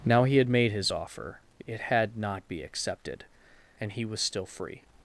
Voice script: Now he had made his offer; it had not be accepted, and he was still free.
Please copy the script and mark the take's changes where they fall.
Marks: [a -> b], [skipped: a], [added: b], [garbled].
Now he had made his offer; it had not be accepted, and he was still free.